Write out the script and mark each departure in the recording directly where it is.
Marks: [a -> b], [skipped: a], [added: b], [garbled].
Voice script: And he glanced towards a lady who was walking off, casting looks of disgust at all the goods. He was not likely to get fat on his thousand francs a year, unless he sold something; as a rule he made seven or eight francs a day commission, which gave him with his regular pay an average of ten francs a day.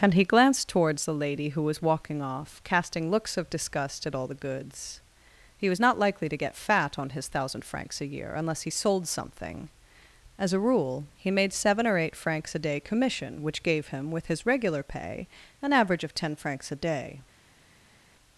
And he glanced towards [a -> the] lady who was walking off, casting looks of disgust at all the goods. He was not likely to get fat on his thousand francs a year, unless he sold something; as a rule he made seven or eight francs a day commission, which gave him with his regular pay an average of ten francs a day.